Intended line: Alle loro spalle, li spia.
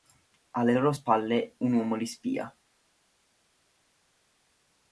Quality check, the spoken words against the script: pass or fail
fail